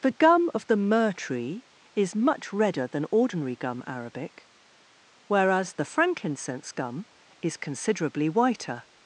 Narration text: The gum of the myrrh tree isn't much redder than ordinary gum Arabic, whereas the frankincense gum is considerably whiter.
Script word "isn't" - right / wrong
wrong